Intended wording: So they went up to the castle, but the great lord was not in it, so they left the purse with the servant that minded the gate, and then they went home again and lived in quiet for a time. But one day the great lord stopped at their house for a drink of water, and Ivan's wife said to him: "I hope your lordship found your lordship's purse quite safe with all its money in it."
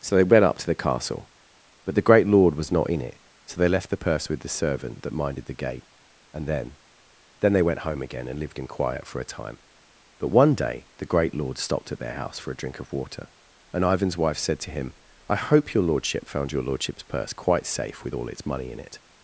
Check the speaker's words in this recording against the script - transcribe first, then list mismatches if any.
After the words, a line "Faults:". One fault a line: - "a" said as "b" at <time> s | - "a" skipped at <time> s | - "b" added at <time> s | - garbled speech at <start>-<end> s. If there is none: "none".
So they went up to the castle, but the great lord was not in it, so they left the purse with the servant that minded the gate, and then then they went home again and lived in quiet for a time. But one day the great lord stopped at their house for a drink of water, and Ivan's wife said to him: "I hope your lordship found your lordship's purse quite safe with all its money in it."
Faults:
- "then" added at 7.4 s